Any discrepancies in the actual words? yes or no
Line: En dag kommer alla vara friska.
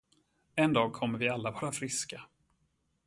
yes